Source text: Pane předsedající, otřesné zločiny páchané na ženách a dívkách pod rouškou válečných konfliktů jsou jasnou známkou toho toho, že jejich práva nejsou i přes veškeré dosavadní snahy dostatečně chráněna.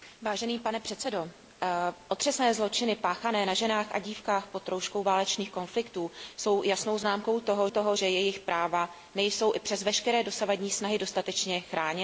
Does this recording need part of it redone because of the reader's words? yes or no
no